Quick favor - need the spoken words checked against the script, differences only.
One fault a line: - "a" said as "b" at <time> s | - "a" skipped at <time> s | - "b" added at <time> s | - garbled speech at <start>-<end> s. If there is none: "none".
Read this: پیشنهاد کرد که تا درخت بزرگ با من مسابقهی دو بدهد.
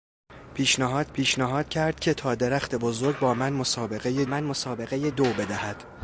- "پیشنهاد" added at 1.1 s
- "من مسابقهی" added at 4.2 s